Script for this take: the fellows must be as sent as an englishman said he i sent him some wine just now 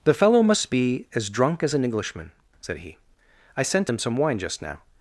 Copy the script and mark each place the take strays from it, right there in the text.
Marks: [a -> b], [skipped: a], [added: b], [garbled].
the [fellows -> fellow] must be as [sent -> drunk] as an englishman said he i sent him some wine just now